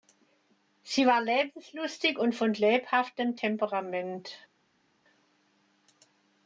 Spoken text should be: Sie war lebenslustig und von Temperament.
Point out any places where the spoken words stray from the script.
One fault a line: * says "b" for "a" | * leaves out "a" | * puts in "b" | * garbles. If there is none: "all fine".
* puts in "lebhaftem"